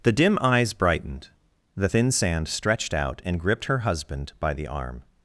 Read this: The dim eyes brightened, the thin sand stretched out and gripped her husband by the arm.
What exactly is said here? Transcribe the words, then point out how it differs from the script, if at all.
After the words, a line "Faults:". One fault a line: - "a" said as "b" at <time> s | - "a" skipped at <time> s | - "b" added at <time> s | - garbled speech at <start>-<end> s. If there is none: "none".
The dim eyes brightened, the thin sand stretched out and gripped her husband by the arm.
Faults:
none